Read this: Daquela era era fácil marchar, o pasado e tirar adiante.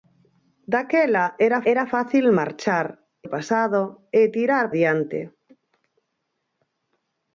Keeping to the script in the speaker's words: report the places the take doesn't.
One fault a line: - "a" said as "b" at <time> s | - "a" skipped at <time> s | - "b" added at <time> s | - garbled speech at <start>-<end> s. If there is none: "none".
none